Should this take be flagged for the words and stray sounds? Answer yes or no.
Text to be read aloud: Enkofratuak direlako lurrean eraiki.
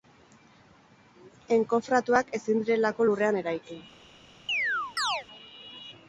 yes